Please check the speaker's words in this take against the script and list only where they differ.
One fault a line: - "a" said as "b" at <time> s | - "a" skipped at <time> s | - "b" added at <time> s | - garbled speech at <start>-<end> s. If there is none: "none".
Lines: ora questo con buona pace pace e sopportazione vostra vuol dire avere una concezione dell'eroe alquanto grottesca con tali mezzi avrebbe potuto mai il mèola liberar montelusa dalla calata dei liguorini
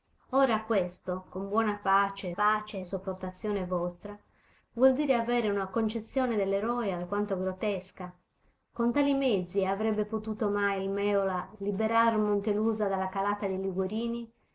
none